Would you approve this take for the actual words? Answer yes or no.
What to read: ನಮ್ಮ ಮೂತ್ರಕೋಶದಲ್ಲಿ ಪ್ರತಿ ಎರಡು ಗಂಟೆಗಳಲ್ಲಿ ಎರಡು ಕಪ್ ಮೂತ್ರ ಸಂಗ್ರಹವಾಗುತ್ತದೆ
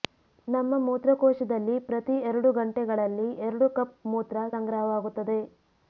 yes